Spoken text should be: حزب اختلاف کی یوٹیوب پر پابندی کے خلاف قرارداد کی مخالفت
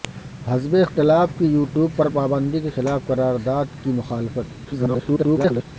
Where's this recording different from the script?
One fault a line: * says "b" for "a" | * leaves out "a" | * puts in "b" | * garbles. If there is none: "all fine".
* garbles